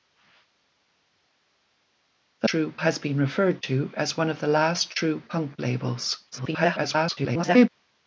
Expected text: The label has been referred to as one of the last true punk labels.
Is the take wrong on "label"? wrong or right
wrong